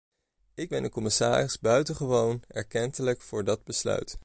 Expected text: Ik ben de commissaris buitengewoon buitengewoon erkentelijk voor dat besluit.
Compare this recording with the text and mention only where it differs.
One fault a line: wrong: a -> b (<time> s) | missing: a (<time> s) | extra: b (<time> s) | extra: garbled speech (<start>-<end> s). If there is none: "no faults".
missing: buitengewoon (2.4 s)